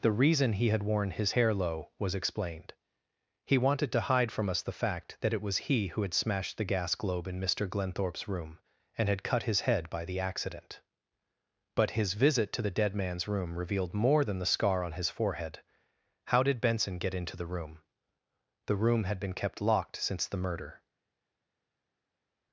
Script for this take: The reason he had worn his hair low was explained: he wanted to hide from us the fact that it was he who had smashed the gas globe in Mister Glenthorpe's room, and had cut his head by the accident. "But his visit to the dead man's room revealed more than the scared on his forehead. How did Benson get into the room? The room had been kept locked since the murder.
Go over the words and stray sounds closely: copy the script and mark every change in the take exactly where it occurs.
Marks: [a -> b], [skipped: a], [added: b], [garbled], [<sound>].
The reason he had worn his hair low was explained: he wanted to hide from us the fact that it was he who had smashed the gas globe in Mister Glenthorpe's room, and had cut his head by the accident. "But his visit to the dead man's room revealed more than the [scared -> scar] on his forehead. How did Benson get into the room? The room had been kept locked since the murder.